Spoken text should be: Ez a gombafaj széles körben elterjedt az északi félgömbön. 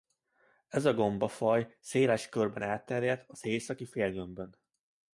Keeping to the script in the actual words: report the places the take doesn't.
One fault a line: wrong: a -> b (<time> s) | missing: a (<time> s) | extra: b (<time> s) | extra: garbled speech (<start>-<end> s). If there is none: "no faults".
no faults